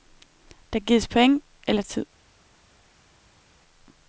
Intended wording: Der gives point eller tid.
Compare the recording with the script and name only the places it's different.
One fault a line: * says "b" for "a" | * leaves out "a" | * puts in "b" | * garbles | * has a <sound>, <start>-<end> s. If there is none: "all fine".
all fine